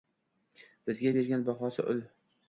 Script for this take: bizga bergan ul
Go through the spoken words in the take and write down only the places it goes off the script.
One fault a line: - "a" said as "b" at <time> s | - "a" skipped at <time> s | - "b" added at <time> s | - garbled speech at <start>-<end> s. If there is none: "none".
- "bahosi" added at 1.5 s